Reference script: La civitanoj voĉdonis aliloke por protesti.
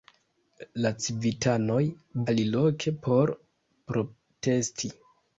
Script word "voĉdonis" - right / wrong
wrong